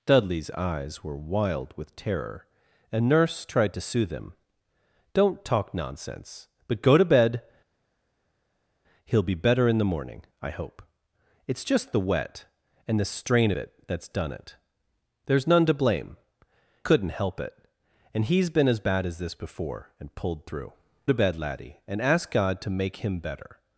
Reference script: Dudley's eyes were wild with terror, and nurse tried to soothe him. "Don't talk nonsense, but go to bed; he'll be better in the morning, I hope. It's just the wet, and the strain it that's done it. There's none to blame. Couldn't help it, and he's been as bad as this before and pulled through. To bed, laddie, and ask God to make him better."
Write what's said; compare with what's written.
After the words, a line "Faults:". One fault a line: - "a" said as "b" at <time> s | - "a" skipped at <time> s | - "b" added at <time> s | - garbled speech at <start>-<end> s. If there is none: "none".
Dudley's eyes were wild with terror, and nurse tried to soothe him. "Don't talk nonsense, but go to bed; he'll be better in the morning, I hope. It's just the wet, and the strain it that's done it. There's none to blame. Couldn't help it, and he's been as bad as this before and pulled through. To bed, laddie, and ask God to make him better."
Faults:
none